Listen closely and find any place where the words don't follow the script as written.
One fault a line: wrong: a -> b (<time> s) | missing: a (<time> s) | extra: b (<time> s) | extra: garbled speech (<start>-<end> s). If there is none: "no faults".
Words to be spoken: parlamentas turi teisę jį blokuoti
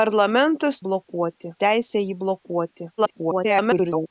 wrong: turi -> blokuoti (0.9 s)
extra: garbled speech (3.0-4.1 s)